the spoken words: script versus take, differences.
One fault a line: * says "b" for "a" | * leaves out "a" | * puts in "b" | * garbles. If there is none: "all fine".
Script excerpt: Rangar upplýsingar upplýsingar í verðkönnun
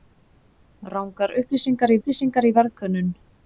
all fine